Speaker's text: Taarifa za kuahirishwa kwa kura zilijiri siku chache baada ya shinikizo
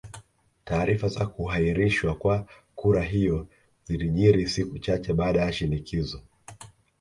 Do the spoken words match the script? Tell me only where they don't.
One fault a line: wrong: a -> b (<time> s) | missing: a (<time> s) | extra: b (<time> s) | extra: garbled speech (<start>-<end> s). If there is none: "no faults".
extra: hiyo (3.0 s)